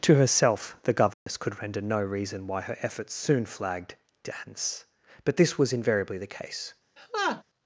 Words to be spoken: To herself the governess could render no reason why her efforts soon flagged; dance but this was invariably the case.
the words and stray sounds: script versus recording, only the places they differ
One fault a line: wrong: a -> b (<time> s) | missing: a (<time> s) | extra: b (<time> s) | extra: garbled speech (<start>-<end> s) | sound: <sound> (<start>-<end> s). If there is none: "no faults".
sound: dropout (1.1-1.3 s)
sound: laugh (7.0-7.4 s)